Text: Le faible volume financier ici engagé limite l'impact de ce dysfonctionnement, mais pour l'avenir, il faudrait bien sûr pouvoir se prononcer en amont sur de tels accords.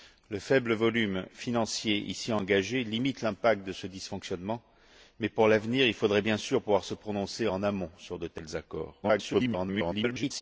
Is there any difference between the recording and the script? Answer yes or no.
yes